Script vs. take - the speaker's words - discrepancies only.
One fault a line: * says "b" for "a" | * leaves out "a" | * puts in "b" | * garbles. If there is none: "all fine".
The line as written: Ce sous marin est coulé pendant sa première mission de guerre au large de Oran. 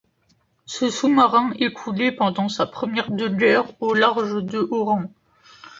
* leaves out "mission"